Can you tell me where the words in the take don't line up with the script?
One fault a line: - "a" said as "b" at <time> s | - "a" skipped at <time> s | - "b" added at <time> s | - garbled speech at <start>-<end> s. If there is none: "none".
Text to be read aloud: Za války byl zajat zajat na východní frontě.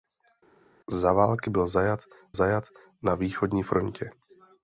none